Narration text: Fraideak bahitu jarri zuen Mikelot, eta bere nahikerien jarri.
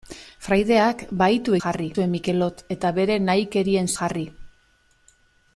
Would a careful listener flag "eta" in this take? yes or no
no